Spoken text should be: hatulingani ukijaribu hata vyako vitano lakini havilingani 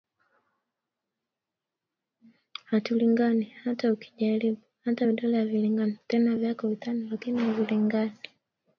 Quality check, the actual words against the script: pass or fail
fail